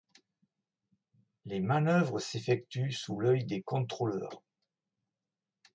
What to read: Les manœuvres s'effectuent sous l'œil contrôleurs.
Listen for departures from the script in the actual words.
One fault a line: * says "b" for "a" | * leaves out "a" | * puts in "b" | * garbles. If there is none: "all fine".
* puts in "des"